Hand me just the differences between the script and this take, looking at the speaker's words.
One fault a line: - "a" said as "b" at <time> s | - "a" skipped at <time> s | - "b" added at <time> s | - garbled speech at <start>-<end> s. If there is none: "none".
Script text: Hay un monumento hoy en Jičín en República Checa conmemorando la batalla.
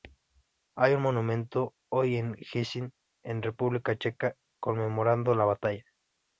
none